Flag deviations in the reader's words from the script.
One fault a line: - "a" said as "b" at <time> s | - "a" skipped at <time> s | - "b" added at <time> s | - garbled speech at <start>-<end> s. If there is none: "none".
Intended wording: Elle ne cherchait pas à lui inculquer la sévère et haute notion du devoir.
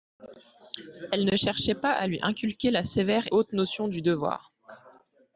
- "et" skipped at 3.2 s